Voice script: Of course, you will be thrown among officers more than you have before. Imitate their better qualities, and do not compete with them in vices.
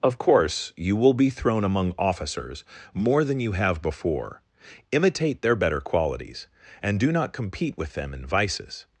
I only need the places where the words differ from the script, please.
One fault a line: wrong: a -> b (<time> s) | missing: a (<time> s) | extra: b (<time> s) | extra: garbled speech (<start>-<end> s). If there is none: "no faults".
no faults